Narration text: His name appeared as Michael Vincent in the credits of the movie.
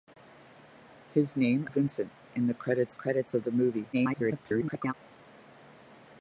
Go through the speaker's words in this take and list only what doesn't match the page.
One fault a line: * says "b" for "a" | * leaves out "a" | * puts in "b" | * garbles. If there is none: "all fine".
* leaves out "appeared as Michael"
* puts in "credits"
* garbles